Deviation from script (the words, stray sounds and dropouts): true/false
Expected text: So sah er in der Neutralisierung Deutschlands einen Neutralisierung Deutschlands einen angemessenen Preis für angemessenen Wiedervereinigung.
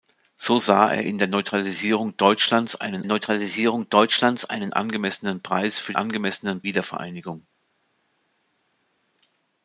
false